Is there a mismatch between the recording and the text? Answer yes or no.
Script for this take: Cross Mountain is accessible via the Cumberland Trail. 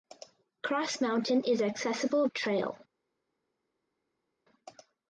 yes